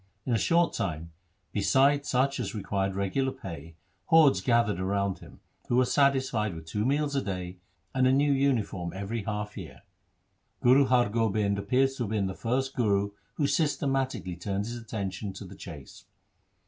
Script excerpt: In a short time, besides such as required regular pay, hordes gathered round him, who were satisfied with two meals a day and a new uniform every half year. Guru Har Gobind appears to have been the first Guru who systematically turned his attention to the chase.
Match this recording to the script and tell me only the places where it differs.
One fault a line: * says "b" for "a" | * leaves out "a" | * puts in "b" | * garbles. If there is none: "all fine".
all fine